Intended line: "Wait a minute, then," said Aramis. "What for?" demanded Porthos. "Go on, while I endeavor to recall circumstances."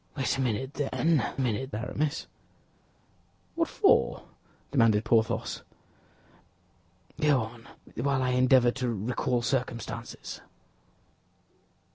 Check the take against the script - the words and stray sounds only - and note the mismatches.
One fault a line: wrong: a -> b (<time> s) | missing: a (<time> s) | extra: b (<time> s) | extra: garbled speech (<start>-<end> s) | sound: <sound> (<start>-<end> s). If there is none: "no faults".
wrong: said -> minute (1.4 s)